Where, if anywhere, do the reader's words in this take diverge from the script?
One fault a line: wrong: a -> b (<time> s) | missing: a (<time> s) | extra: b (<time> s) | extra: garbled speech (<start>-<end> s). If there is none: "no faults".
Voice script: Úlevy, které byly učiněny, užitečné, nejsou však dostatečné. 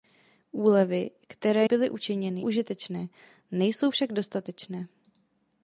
no faults